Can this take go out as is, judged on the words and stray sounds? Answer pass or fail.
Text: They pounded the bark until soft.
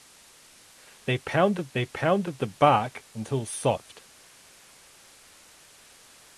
fail